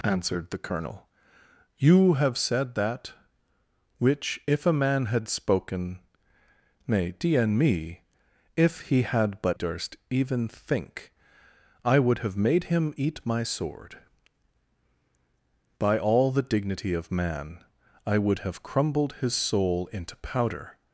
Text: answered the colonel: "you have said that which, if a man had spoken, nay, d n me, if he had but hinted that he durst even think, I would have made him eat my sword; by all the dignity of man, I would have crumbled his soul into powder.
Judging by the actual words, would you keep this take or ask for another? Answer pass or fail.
fail